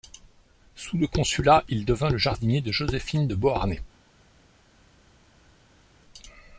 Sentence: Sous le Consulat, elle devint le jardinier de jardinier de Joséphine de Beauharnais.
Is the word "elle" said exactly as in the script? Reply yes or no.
no